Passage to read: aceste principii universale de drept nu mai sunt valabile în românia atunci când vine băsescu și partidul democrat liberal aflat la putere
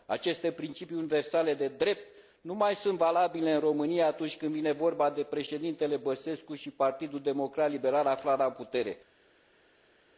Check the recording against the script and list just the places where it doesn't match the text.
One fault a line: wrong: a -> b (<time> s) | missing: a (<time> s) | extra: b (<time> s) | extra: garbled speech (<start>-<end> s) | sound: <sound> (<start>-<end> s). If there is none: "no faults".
extra: vorba de președintele (4.7 s)